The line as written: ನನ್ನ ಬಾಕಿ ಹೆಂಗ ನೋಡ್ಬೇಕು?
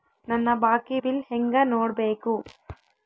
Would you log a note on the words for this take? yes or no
yes